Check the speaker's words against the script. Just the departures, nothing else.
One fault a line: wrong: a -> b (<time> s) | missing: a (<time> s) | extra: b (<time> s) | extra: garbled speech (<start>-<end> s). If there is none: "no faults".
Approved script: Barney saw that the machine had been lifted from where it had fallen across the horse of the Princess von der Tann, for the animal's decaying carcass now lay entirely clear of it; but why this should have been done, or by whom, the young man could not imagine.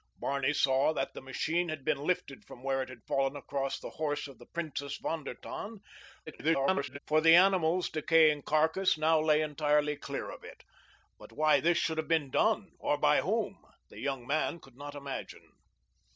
extra: garbled speech (6.3-7.0 s)